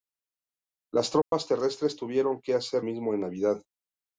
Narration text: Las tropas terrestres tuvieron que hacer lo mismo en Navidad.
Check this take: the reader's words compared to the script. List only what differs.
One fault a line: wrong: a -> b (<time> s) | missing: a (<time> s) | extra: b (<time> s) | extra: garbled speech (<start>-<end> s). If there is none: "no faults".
missing: lo (2.9 s)